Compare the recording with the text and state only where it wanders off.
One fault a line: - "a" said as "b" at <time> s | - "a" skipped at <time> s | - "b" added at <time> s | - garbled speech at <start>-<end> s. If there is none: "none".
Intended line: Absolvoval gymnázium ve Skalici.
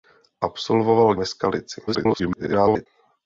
- "gymnázium" skipped at 1.1 s
- garbled speech at 1.9-2.9 s